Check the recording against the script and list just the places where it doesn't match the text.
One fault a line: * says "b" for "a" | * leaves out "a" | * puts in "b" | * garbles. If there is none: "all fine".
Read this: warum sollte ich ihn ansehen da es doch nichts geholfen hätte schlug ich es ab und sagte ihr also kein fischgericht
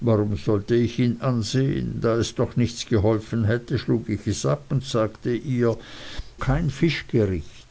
* leaves out "also"